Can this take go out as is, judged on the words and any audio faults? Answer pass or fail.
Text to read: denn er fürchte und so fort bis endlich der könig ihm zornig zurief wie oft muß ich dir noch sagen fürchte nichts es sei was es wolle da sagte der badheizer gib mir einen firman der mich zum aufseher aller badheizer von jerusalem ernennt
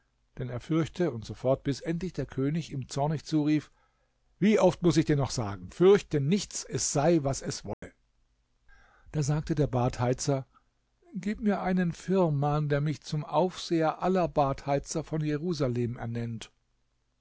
fail